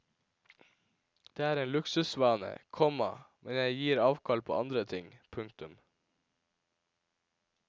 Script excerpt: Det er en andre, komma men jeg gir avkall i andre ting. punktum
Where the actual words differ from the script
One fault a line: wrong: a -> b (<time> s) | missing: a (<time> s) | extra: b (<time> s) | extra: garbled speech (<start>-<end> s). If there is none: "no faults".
wrong: andre -> luksusvane (1.7 s)
wrong: i -> på (4.5 s)